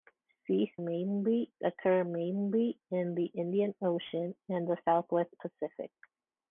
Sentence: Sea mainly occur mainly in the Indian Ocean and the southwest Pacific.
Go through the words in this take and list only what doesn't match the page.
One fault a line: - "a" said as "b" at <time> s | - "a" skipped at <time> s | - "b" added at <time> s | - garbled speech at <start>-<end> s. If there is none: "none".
none